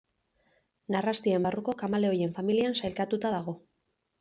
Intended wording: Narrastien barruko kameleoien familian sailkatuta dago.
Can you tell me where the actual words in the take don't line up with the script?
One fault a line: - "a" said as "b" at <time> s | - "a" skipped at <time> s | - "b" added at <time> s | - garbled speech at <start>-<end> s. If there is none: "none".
none